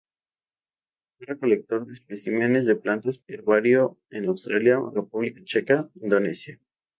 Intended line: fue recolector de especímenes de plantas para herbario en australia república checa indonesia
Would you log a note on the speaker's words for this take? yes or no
yes